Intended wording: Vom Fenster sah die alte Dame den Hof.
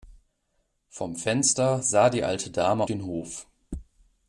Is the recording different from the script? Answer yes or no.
no